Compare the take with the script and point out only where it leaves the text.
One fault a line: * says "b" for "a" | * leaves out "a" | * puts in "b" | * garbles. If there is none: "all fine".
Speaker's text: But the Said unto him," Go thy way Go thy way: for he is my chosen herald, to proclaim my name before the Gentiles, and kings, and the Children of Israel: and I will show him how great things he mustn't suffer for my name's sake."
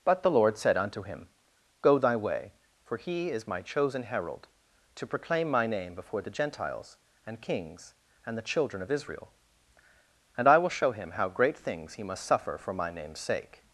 * puts in "Lord"
* leaves out "Go thy way"
* says "must" for "mustn't"